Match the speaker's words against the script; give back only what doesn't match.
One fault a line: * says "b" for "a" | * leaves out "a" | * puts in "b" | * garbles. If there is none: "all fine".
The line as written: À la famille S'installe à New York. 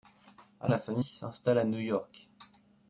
all fine